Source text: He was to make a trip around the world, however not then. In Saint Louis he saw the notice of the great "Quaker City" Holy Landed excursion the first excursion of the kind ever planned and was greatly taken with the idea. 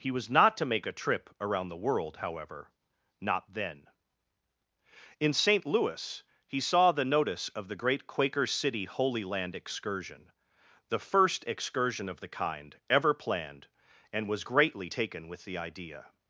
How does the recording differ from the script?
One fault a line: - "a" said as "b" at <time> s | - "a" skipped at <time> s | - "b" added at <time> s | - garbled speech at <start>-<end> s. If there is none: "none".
- "not" added at 0.3 s
- "Landed" said as "Land" at 9.2 s